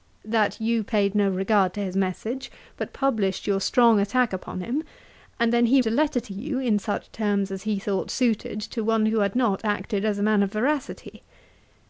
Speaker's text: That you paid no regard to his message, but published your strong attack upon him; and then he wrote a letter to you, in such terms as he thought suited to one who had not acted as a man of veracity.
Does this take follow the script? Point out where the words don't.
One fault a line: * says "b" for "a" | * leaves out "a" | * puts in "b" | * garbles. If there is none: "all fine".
* leaves out "wrote"